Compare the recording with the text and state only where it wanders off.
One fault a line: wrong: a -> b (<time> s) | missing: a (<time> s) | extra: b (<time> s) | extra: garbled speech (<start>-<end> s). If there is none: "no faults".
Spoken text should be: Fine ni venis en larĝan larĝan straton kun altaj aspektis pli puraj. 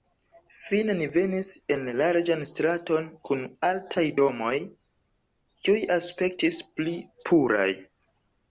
missing: larĝan (2.4 s)
extra: domoj kiuj (4.2 s)